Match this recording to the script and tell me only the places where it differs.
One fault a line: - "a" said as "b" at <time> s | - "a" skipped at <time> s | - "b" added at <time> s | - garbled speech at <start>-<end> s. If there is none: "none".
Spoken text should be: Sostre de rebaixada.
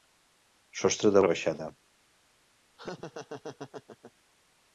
none